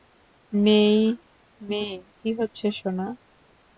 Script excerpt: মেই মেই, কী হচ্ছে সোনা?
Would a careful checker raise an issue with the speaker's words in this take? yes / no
no